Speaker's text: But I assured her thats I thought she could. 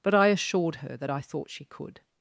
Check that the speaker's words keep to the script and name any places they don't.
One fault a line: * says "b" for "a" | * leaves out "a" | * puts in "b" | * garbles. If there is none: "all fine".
* says "that" for "thats"